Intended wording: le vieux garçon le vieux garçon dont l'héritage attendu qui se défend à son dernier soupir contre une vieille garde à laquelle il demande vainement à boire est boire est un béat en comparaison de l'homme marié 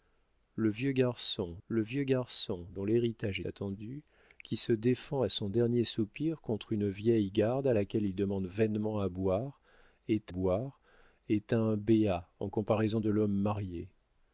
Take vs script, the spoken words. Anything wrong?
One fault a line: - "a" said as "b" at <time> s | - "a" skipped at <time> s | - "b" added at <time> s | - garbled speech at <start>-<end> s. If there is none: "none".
none